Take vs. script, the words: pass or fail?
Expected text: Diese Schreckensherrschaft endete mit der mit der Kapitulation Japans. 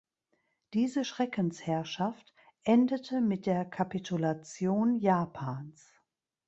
fail